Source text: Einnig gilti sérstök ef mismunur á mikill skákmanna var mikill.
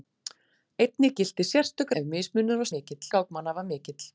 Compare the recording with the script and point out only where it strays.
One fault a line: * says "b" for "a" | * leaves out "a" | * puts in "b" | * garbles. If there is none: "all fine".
all fine